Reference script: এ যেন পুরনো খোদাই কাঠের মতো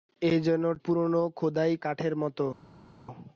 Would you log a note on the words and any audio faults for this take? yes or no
no